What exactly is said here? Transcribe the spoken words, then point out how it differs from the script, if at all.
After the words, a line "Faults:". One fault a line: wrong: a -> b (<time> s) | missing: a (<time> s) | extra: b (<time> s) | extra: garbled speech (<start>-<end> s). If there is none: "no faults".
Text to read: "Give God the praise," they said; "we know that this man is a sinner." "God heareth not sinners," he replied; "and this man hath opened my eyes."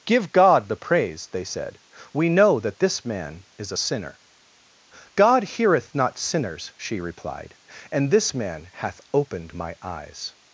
"Give God the praise," they said; "we know that this man is a sinner." "God heareth not sinners," she replied; "and this man hath opened my eyes."
Faults:
wrong: he -> she (6.8 s)